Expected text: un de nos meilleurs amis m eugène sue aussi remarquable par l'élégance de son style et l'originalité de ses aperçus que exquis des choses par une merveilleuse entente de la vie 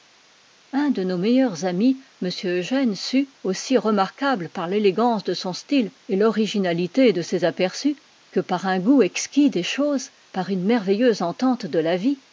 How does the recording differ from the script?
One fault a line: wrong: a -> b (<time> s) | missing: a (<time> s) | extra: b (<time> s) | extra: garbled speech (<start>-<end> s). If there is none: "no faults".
extra: par un goût (8.4 s)